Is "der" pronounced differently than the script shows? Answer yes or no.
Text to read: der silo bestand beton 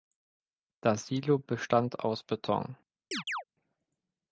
yes